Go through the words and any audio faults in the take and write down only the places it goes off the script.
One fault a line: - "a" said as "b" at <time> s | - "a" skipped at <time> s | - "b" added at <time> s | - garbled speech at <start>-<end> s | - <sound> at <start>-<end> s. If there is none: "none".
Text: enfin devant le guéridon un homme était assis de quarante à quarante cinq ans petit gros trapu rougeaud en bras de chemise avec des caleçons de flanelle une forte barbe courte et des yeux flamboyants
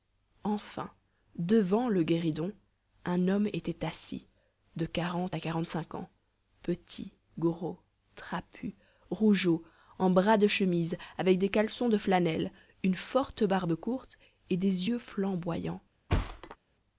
- thud at 16.1-16.6 s